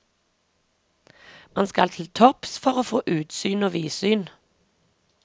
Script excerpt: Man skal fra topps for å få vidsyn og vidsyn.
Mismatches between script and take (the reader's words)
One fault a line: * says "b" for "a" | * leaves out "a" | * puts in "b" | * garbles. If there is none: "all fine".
* says "til" for "fra"
* says "utsyn" for "vidsyn"